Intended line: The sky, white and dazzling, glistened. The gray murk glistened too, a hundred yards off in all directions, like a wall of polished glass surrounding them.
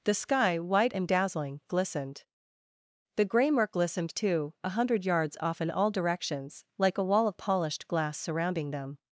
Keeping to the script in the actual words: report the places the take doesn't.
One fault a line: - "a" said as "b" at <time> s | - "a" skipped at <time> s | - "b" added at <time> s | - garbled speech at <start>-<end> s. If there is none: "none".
none